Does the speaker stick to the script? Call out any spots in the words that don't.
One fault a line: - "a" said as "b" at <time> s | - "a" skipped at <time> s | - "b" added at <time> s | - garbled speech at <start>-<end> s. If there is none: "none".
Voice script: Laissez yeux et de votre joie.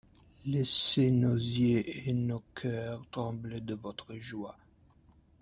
- "nos" added at 1.1 s
- "nos cœurs trembler" added at 2.1 s